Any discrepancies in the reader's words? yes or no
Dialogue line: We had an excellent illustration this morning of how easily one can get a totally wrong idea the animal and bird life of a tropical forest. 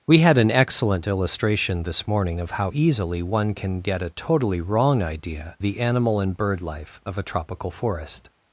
no